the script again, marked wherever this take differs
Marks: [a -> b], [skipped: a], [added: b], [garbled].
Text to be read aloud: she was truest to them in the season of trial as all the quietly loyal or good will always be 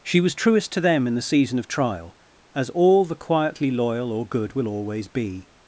she was truest to them in the season of trial as all the quietly loyal or good will always be